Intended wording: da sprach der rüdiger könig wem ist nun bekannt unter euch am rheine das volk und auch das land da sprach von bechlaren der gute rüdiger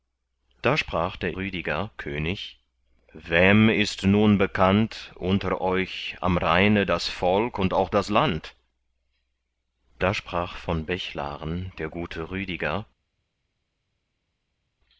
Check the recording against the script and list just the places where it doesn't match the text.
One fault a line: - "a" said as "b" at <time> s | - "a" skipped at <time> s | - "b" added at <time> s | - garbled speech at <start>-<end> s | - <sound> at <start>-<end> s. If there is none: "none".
none